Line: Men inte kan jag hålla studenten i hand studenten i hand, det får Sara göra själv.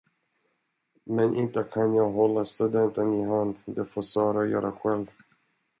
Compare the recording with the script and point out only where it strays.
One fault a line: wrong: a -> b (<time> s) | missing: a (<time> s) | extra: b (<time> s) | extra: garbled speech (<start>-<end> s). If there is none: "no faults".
missing: studenten i hand (3.6 s)